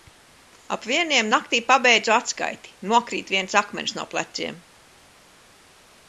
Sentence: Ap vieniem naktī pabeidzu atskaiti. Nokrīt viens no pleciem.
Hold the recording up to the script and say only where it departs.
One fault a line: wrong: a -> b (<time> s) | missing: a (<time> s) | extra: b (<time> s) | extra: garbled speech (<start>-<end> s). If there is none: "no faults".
extra: akmens (3.6 s)